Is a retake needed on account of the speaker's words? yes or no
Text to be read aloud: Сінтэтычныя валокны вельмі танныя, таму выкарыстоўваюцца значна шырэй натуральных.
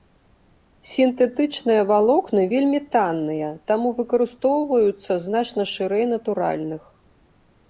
no